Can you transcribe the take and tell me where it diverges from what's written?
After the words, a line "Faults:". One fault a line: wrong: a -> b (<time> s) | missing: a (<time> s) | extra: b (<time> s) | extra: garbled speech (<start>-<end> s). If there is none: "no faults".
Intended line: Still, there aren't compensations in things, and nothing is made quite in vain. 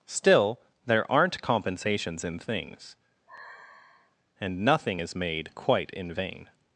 Still, there aren't compensations in things, and nothing is made quite in vain.
Faults:
no faults